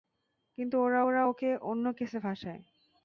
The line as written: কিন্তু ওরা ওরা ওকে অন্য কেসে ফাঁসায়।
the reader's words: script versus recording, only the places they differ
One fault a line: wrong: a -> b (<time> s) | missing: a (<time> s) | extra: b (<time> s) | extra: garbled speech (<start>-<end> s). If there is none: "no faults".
no faults